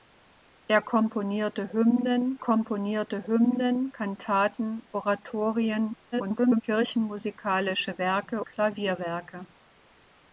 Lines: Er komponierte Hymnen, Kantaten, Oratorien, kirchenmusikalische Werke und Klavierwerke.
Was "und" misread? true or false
true